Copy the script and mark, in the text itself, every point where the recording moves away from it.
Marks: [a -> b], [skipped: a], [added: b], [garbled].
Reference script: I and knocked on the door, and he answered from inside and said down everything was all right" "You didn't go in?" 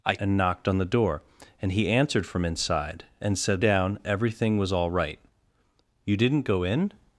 I and knocked on the door, and he answered from inside and said down everything was all right" "You didn't go in?"